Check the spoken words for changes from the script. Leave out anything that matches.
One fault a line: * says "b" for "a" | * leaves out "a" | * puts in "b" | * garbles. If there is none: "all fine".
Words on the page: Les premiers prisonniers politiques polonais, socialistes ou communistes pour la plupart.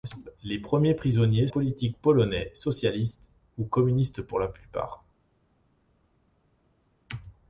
all fine